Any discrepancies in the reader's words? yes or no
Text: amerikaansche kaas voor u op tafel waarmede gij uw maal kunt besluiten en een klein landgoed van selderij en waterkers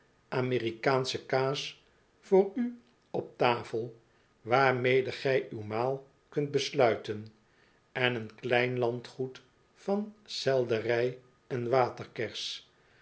no